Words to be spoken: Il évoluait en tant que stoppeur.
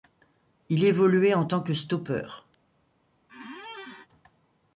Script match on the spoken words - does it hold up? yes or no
yes